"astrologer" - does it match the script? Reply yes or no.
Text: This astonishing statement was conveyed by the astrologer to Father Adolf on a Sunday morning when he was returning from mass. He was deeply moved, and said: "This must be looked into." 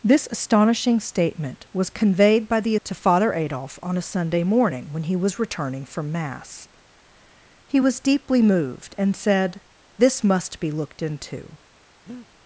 no